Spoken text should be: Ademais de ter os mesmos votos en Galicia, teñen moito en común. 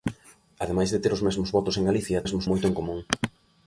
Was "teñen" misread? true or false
true